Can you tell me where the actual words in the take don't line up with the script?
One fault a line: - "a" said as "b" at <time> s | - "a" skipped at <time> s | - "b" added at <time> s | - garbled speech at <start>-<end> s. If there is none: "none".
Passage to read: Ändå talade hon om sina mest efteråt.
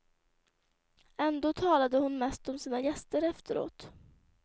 - "mest" added at 2.2 s
- "mest" said as "gäster" at 2.8 s